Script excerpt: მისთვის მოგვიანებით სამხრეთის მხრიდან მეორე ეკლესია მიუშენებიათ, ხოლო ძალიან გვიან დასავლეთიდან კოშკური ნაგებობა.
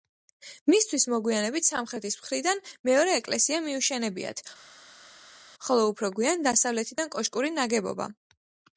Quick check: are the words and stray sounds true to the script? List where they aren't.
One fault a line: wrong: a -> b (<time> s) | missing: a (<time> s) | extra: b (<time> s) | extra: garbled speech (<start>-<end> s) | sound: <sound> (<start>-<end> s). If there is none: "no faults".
wrong: ძალიან -> უფრო (5.9 s)